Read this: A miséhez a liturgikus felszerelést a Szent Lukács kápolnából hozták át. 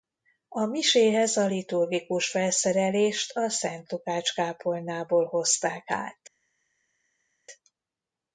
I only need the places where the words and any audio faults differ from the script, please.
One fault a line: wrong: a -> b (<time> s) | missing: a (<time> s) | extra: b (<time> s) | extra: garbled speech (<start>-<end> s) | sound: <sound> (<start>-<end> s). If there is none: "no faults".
no faults